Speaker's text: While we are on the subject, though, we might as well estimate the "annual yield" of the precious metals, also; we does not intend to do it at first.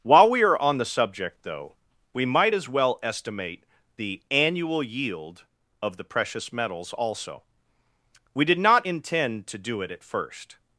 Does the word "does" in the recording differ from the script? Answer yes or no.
yes